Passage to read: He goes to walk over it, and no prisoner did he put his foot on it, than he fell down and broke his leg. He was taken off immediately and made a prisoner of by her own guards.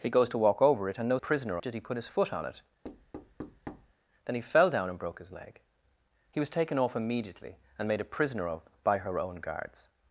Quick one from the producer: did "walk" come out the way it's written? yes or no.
yes